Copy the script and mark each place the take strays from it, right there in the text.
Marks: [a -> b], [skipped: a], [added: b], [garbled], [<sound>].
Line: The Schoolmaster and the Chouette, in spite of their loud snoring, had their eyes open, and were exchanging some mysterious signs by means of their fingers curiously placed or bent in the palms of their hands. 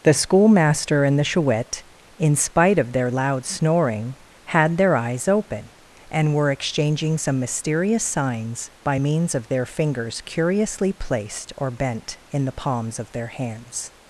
The Schoolmaster and the Chouette, in spite of their loud snoring, had their eyes open, and were exchanging some mysterious signs by means of their fingers curiously placed or bent in the palms of their hands.